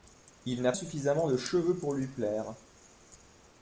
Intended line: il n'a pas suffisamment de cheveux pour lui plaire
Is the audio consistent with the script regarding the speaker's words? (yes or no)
no